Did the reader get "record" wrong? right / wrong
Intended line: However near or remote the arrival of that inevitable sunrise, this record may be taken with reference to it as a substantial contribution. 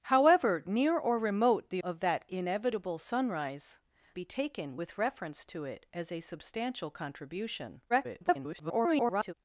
wrong